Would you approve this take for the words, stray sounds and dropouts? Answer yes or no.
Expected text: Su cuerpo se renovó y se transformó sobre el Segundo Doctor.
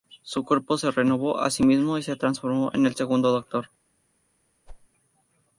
no